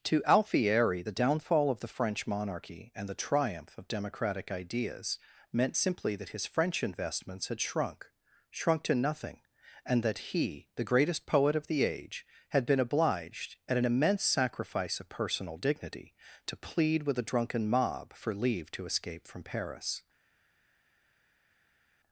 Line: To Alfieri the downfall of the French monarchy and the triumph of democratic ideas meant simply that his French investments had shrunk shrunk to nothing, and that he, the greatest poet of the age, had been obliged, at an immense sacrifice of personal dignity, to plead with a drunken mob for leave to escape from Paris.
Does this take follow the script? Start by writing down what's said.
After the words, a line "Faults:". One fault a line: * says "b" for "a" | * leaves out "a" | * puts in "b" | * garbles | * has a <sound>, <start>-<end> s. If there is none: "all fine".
To Alfieri the downfall of the French monarchy and the triumph of democratic ideas meant simply that his French investments had shrunk shrunk to nothing, and that he, the greatest poet of the age, had been obliged, at an immense sacrifice of personal dignity, to plead with a drunken mob for leave to escape from Paris.
Faults:
all fine